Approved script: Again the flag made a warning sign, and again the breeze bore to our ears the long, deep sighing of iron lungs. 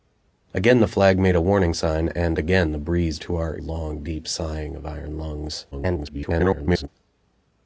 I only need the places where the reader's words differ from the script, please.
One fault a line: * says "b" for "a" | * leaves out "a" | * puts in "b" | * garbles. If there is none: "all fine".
* leaves out "bore"
* leaves out "ears the"
* garbles